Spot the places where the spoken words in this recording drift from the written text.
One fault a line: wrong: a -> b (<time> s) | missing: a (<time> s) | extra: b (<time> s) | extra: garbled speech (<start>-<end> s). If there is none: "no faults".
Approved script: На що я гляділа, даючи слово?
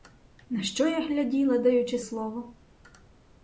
no faults